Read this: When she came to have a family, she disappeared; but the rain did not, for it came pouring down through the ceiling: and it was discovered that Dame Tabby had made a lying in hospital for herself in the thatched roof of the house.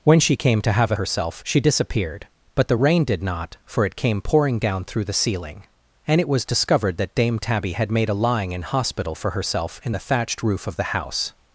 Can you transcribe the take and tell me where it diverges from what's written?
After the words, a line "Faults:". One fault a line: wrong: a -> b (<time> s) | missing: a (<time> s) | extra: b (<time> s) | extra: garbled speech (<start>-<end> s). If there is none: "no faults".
When she came to have a herself, she disappeared; but the rain did not, for it came pouring down through the ceiling: and it was discovered that Dame Tabby had made a lying in hospital for herself in the thatched roof of the house.
Faults:
wrong: family -> herself (0.9 s)